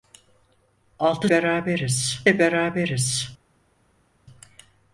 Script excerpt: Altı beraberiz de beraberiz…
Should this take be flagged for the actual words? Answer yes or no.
no